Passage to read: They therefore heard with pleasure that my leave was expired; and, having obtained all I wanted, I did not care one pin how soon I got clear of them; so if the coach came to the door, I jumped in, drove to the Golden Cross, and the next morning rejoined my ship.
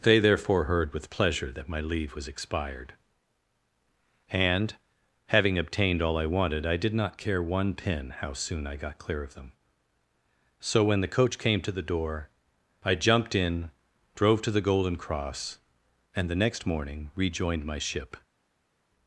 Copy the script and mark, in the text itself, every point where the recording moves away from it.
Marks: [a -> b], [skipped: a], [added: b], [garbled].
They therefore heard with pleasure that my leave was expired; and, having obtained all I wanted, I did not care one pin how soon I got clear of them; so [if -> when] the coach came to the door, I jumped in, drove to the Golden Cross, and the next morning rejoined my ship.